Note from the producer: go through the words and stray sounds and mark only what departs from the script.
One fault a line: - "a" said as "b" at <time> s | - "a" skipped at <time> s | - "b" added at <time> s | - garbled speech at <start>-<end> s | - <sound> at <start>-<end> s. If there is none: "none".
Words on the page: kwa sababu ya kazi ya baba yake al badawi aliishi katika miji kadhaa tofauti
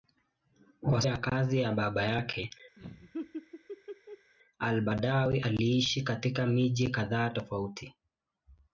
- "sababu" skipped at 1.0 s
- laugh at 2.8-4.3 s